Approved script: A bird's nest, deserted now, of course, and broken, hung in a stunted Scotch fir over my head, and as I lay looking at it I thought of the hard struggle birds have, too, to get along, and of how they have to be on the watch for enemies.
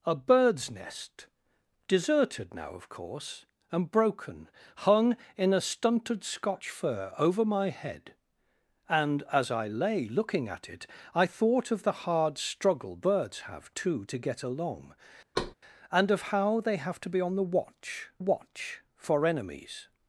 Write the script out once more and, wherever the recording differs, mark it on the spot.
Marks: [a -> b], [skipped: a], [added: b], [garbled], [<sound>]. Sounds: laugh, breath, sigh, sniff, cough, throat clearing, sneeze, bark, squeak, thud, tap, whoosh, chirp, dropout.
A bird's nest, deserted now, of course, and broken, hung in a stunted Scotch fir over my head, and as I lay looking at it I thought of the hard struggle birds have, too, to get along, [thud] and of how they have to be on the watch [added: watch] for enemies.